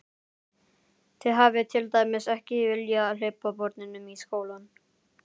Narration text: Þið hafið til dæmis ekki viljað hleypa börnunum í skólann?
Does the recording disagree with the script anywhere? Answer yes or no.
no